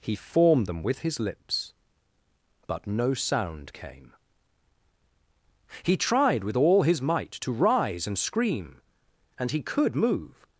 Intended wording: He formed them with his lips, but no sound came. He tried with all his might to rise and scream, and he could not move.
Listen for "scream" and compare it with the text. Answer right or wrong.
right